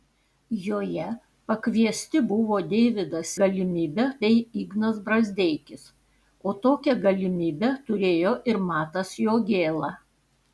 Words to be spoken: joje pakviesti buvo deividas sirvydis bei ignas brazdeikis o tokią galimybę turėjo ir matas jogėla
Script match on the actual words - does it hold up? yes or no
no